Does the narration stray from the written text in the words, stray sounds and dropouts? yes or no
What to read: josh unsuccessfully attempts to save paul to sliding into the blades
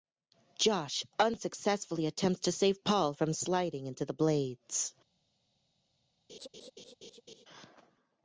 yes